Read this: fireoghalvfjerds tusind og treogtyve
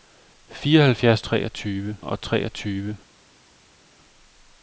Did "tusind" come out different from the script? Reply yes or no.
yes